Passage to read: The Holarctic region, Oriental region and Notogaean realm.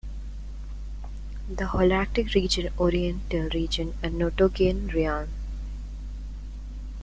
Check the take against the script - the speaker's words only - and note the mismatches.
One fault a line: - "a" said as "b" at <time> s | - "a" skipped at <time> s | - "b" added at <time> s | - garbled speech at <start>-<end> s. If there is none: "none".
none